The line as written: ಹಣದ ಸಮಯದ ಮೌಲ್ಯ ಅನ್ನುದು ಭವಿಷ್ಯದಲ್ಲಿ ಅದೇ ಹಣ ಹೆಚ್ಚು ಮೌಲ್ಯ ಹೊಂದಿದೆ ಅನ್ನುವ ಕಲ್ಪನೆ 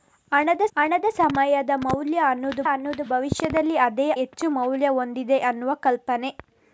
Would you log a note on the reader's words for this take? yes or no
yes